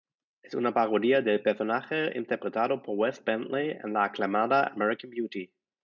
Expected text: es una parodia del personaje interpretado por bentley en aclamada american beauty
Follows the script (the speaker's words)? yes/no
no